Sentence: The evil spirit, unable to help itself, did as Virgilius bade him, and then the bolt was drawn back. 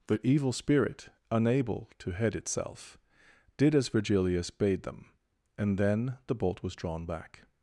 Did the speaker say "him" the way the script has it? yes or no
no